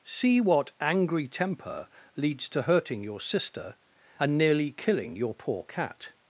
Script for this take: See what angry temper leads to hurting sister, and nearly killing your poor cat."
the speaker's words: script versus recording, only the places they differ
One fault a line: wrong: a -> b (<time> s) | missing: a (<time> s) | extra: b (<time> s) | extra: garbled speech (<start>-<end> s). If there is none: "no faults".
extra: your (3.0 s)